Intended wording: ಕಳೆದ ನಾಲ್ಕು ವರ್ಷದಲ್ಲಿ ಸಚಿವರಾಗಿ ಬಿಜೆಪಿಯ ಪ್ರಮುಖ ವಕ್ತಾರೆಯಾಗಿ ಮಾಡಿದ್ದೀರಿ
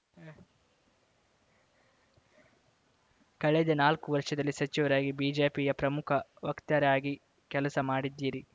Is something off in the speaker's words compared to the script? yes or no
yes